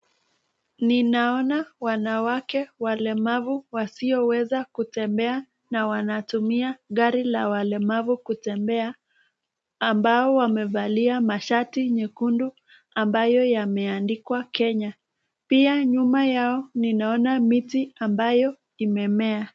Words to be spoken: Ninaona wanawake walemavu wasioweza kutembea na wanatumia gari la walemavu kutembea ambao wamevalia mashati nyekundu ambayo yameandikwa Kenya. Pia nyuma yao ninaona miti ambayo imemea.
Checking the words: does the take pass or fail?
pass